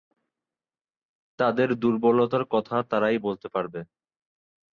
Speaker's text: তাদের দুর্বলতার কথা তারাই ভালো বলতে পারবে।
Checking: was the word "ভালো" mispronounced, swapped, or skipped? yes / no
yes